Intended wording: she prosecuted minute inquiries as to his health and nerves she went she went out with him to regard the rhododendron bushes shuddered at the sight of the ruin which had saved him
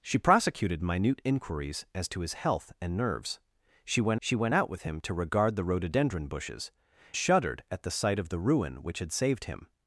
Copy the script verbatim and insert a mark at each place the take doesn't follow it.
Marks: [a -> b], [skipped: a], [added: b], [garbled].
she prosecuted minute inquiries as to his health and nerves she went she went out with him to regard the rhododendron bushes shuddered at the sight of the ruin which had saved him